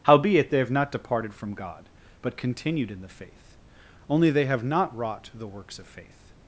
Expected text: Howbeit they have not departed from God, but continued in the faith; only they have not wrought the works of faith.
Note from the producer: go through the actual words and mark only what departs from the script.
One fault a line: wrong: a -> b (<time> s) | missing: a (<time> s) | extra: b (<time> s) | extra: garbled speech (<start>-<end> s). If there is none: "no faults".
no faults